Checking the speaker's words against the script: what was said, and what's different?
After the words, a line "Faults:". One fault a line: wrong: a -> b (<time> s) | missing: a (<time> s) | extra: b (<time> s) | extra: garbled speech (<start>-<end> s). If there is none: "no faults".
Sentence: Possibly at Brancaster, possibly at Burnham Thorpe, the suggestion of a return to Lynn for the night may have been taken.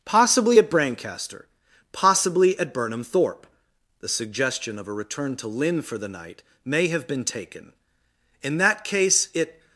Possibly at Brancaster, possibly at Burnham Thorpe, the suggestion of a return to Lynn for the night may have been taken. In that case it
Faults:
extra: In that case it (8.4 s)